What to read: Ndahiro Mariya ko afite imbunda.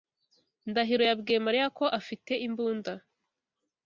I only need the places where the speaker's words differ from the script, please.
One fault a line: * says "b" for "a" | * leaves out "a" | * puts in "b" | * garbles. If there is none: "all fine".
* puts in "yabwiye"